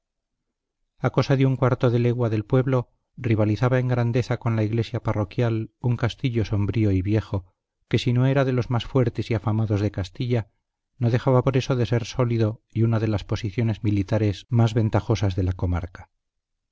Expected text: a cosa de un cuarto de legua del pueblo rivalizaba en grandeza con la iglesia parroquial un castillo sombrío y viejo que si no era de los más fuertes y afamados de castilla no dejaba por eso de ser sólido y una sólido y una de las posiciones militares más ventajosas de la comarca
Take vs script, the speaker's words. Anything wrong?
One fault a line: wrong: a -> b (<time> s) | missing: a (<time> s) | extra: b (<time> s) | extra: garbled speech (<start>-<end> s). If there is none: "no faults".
missing: sólido y una (13.0 s)